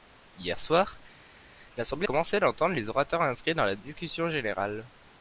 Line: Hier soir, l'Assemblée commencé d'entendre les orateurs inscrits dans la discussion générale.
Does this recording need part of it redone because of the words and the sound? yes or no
no